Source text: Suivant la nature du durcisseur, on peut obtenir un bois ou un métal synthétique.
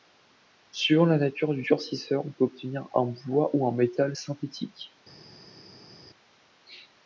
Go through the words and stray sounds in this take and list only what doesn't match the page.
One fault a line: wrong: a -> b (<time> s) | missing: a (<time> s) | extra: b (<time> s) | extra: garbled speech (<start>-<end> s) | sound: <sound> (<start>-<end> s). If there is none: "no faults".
no faults